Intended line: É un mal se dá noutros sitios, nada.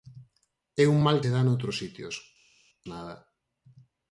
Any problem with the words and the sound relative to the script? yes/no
no